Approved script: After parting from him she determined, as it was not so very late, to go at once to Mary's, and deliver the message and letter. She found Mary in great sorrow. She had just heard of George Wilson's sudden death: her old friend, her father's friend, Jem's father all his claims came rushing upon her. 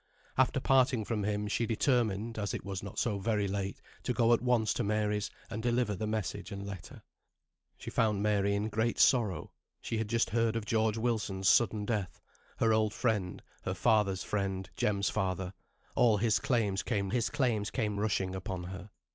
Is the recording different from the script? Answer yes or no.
yes